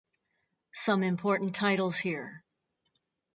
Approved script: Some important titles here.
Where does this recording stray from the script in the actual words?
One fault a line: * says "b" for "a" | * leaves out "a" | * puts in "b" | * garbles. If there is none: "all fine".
all fine